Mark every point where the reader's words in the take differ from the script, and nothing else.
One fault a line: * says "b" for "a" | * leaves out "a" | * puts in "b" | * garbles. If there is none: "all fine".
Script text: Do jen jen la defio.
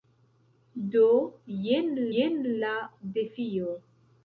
all fine